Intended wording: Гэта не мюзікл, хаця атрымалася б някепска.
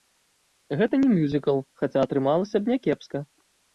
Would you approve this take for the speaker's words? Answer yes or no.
yes